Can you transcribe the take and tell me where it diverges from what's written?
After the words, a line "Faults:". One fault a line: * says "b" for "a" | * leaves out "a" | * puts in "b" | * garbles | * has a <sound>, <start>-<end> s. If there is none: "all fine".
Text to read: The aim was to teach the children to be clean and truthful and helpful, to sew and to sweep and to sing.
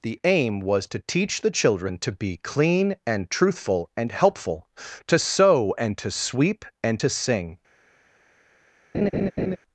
The aim was to teach the children to be clean and truthful and helpful, to sew and to sweep and to sing.
Faults:
* has a laugh, 8.9-9.6 s